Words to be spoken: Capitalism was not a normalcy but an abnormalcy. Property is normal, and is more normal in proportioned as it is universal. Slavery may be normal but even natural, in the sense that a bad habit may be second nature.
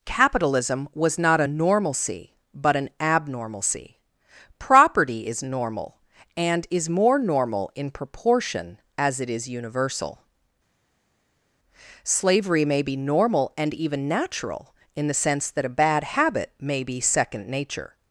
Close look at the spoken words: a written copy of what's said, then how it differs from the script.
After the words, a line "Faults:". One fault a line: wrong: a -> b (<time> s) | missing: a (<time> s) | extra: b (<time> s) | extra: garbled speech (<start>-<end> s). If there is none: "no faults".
Capitalism was not a normalcy but an abnormalcy. Property is normal, and is more normal in proportion as it is universal. Slavery may be normal and even natural, in the sense that a bad habit may be second nature.
Faults:
wrong: proportioned -> proportion (7.9 s)
wrong: but -> and (13.6 s)